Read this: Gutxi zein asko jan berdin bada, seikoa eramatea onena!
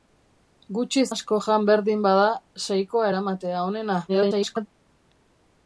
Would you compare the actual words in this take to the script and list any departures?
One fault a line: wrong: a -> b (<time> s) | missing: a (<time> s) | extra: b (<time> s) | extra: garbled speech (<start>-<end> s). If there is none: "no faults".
missing: zein (1.0 s)
extra: garbled speech (4.1-4.7 s)